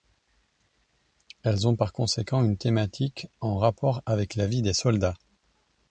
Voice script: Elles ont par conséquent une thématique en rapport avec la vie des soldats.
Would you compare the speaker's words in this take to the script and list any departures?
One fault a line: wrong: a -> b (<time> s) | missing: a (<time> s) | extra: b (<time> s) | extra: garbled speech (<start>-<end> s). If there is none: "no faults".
no faults